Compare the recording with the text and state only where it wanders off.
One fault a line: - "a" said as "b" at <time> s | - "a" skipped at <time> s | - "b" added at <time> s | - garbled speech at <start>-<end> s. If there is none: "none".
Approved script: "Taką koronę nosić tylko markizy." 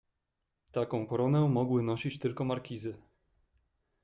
- "mogły" added at 1.5 s